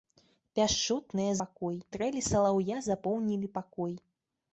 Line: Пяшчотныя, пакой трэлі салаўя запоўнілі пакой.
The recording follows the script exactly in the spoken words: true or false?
true